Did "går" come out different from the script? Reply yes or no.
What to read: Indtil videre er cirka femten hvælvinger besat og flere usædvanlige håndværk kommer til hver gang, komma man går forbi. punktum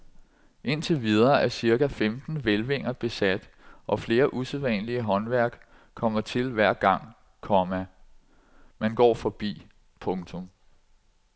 no